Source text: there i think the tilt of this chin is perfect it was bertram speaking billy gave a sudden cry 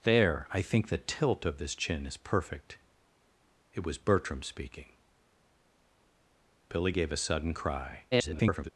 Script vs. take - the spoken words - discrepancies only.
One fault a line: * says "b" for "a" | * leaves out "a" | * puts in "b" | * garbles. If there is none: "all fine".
* garbles